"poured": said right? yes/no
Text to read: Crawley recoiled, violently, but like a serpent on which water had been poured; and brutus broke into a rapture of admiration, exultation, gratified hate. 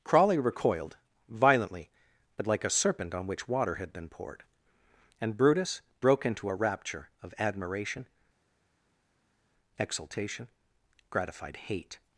yes